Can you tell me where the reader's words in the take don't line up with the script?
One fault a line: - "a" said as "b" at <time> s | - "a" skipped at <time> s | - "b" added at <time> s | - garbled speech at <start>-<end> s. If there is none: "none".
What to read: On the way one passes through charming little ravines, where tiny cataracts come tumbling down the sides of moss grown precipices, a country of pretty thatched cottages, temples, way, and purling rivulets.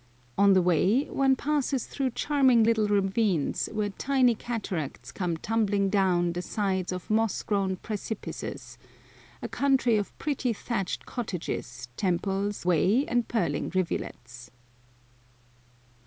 none